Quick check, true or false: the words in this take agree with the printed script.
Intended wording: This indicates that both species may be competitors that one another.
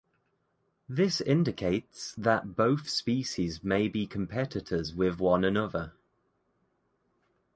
false